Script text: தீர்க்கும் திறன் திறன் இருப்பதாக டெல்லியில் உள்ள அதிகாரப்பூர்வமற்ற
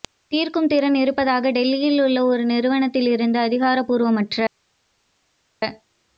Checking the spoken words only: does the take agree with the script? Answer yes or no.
no